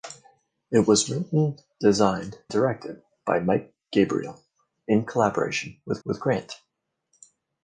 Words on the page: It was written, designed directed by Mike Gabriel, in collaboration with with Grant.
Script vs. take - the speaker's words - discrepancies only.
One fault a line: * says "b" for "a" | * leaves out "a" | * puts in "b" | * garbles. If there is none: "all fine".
all fine